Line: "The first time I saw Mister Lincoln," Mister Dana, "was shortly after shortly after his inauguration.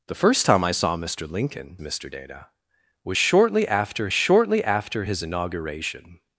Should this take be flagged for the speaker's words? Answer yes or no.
no